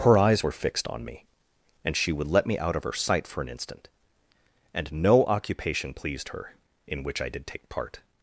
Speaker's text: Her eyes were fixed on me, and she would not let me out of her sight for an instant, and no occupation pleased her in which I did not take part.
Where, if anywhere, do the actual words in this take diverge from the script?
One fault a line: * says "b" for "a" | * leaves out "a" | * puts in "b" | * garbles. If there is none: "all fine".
* leaves out "not"
* leaves out "not"